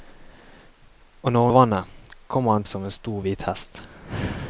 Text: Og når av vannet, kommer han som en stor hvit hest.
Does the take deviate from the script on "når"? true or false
false